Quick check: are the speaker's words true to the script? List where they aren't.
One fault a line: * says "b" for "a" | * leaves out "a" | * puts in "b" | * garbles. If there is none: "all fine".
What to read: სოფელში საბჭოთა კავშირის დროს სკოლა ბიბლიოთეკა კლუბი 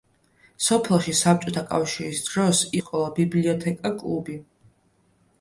all fine